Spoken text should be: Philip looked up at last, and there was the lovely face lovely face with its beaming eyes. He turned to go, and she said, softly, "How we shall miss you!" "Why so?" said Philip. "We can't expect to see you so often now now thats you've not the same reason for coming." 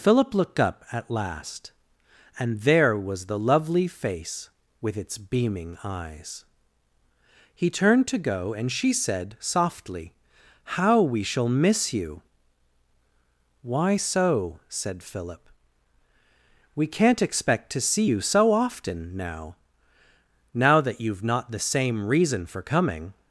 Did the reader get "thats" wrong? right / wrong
wrong